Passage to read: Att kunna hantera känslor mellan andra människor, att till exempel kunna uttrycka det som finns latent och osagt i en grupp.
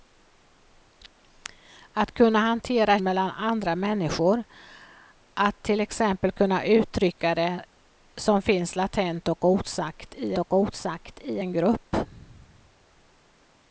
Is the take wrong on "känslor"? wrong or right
wrong